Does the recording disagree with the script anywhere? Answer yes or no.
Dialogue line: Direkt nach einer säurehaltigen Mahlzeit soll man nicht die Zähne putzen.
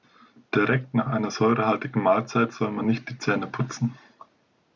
no